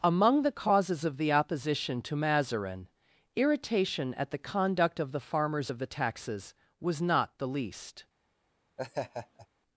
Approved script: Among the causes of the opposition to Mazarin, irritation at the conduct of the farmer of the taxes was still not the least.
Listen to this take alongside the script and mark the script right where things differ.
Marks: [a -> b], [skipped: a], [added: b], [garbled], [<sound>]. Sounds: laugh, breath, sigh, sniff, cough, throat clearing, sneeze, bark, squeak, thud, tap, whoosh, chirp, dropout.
Among the causes of the opposition to Mazarin, irritation at the conduct of the [farmer -> farmers] of the taxes was [skipped: still] not the least. [laugh]